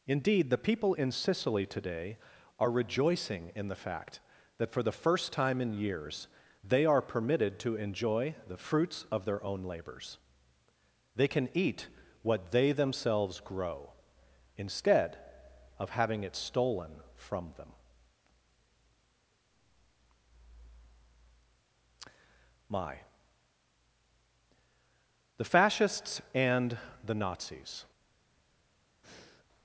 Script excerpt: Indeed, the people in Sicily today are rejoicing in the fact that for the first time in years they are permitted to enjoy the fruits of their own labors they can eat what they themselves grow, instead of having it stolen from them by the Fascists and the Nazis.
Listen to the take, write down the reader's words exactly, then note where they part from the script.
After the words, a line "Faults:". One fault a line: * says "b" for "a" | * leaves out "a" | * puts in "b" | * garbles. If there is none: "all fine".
Indeed, the people in Sicily today are rejoicing in the fact that for the first time in years they are permitted to enjoy the fruits of their own labors they can eat what they themselves grow, instead of having it stolen from them my the Fascists and the Nazis.
Faults:
* says "my" for "by"